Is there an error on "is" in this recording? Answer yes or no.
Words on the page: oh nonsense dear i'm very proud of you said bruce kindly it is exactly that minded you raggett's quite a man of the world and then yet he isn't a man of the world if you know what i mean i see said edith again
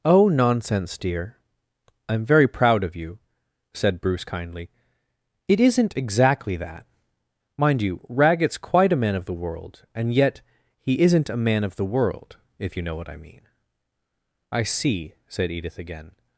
yes